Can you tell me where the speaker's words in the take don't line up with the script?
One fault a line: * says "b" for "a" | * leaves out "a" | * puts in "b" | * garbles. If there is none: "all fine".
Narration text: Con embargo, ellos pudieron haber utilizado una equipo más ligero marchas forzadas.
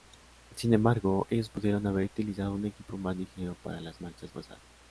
* says "Sin" for "Con"
* says "un" for "una"
* puts in "para las"